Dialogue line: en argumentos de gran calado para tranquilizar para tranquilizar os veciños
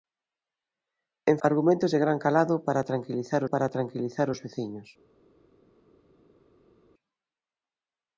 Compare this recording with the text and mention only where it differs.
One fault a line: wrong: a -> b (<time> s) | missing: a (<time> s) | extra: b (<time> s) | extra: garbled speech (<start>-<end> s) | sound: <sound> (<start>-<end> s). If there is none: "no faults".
no faults